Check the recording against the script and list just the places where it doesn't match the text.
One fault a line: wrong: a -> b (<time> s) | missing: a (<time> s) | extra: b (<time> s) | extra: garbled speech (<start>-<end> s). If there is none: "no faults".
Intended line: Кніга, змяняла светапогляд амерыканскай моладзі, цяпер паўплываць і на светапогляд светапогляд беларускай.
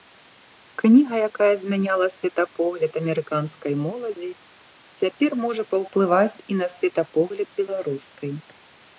extra: якая (1.3 s)
extra: можа (5.4 s)
missing: светапогляд (7.5 s)